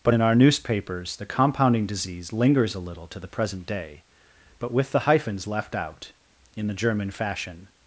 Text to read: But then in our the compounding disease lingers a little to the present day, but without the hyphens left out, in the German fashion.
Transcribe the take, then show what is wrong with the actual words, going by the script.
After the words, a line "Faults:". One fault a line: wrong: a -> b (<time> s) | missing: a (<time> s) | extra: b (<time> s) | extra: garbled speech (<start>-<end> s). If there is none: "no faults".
But in our newspapers the compounding disease lingers a little to the present day, but with the hyphens left out, in the German fashion.
Faults:
missing: then (0.1 s)
extra: newspapers (0.3 s)
wrong: without -> with (4.7 s)